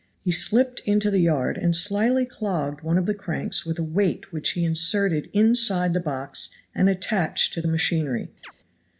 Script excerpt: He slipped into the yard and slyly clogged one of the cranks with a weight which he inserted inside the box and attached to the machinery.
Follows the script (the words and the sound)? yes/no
no